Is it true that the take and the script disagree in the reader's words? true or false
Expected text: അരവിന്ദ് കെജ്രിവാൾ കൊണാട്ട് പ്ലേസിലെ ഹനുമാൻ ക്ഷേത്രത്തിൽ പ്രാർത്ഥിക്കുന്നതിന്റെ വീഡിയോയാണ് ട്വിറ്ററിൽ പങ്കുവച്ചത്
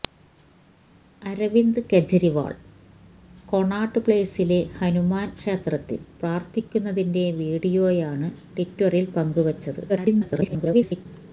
true